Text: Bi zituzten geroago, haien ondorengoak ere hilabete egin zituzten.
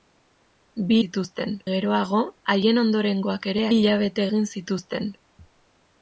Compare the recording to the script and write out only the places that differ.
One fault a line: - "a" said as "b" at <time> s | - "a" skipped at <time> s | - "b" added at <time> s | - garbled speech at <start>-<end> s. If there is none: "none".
none